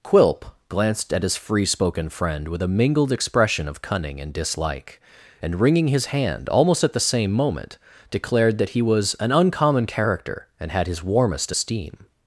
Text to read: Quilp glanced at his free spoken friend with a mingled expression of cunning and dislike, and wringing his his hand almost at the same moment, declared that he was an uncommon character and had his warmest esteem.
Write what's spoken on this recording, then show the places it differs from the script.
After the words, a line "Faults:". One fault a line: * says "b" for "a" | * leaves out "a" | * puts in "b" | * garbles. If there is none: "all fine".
Quilp glanced at his free spoken friend with a mingled expression of cunning and dislike, and wringing his hand almost at the same moment, declared that he was an uncommon character and had his warmest esteem.
Faults:
* leaves out "his"